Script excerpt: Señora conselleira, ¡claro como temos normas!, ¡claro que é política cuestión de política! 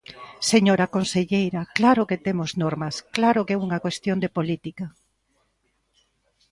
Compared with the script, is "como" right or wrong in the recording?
wrong